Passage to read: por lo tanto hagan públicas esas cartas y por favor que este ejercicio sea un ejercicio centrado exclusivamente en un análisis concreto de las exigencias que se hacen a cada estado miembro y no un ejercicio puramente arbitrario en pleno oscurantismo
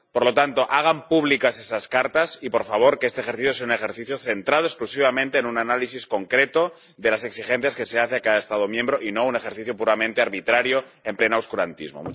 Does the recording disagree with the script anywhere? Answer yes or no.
no